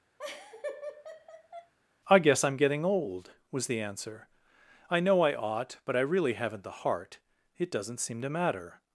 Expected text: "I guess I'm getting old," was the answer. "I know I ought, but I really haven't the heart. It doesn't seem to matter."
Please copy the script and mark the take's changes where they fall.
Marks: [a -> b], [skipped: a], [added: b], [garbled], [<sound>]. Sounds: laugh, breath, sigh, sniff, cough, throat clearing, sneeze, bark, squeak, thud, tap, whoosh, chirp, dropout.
[laugh] "I guess I'm getting old," was the answer. "I know I ought, but I really haven't the heart. It doesn't seem to matter."